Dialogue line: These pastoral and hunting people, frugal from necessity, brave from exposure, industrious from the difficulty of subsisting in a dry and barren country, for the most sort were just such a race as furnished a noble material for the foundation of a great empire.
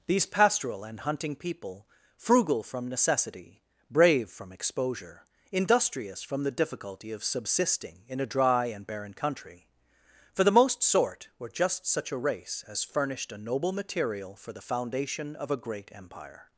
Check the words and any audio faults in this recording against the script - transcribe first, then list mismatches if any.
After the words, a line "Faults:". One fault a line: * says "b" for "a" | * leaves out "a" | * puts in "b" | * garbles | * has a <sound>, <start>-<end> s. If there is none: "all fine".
These pastoral and hunting people, frugal from necessity, brave from exposure, industrious from the difficulty of subsisting in a dry and barren country, for the most sort were just such a race as furnished a noble material for the foundation of a great empire.
Faults:
all fine